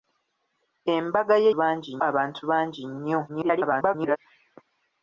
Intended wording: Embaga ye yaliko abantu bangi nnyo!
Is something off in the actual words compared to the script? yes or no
yes